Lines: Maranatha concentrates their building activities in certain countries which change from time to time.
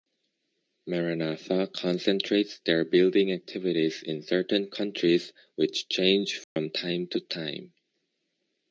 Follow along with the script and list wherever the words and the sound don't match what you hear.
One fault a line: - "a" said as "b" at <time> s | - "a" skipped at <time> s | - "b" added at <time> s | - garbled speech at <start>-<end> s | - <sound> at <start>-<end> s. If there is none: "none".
- dropout at 6.4-6.6 s